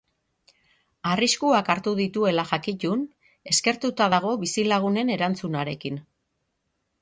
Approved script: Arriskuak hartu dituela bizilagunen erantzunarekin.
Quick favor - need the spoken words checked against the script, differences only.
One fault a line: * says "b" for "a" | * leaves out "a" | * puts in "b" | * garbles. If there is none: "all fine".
* puts in "jakitun eskertuta dago"